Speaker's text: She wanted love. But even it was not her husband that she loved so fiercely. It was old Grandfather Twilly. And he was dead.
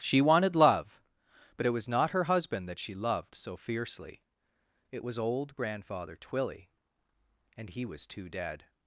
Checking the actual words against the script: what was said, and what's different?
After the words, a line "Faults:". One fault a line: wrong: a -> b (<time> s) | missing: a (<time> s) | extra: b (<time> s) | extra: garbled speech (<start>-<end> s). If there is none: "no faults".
She wanted love. But it was not her husband that she loved so fiercely. It was old Grandfather Twilly. And he was too dead.
Faults:
missing: even (1.7 s)
extra: too (8.1 s)